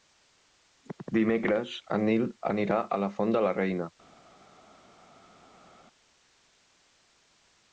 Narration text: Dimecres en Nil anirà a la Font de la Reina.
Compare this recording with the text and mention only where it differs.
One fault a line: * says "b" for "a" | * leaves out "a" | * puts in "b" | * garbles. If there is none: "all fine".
all fine